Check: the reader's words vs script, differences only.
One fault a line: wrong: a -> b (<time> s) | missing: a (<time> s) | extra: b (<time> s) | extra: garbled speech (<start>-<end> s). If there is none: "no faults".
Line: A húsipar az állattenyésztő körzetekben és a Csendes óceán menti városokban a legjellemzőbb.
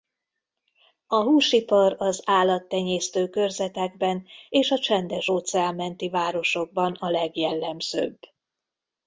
no faults